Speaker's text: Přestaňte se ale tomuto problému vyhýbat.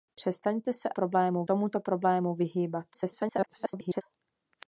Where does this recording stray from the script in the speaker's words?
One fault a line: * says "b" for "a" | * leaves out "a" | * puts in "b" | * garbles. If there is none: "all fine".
* says "problému" for "ale"
* garbles